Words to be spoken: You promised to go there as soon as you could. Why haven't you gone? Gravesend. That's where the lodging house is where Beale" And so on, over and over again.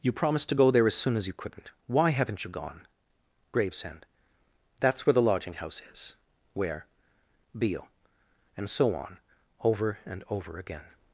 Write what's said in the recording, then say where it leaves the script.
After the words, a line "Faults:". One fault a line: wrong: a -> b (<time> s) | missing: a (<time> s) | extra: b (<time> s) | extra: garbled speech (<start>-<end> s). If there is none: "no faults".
You promised to go there as soon as you couldn't. Why haven't you gone? Gravesend. That's where the lodging house is where Beale" And so on, over and over again.
Faults:
wrong: could -> couldn't (1.3 s)